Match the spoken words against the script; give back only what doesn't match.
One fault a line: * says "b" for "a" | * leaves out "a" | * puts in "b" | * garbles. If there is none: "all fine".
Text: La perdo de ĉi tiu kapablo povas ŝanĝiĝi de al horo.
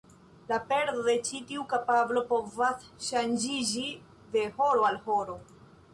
* puts in "horo"